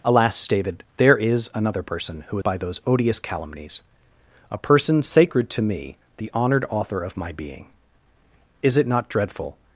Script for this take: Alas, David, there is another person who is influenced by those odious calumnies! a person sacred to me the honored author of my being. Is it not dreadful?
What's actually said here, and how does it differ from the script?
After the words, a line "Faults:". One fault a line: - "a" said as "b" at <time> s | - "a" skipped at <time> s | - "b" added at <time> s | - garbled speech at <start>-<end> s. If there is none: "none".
Alas, David, there is another person who by those odious calumnies! a person sacred to me the honored author of my being. Is it not dreadful?
Faults:
- "is influenced" skipped at 2.4 s